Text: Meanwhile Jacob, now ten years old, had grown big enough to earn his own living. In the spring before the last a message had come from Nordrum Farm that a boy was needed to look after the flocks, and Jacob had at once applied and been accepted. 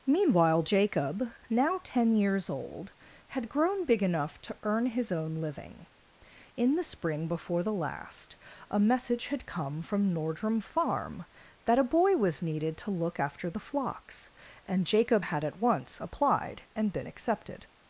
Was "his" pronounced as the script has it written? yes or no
yes